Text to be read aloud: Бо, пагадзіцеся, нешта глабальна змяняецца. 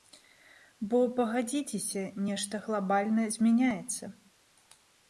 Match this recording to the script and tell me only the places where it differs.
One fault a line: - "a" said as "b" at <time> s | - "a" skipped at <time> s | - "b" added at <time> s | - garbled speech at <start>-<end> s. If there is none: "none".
none